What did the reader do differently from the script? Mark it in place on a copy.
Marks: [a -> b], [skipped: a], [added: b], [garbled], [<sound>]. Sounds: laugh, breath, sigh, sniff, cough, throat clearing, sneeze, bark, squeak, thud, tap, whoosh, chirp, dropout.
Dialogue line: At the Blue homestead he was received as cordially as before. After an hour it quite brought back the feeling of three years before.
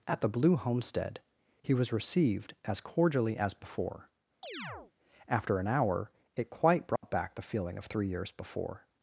At the Blue homestead he was received as cordially as before. [chirp] After an hour it quite brought [dropout] back the feeling of three years before.